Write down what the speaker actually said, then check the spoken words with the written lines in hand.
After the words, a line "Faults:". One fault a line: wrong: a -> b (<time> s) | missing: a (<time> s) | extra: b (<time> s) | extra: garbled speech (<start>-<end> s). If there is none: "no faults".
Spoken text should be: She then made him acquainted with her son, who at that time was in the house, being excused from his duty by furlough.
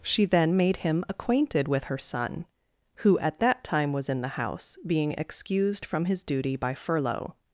She then made him acquainted with her son, who at that time was in the house, being excused from his duty by furlough.
Faults:
no faults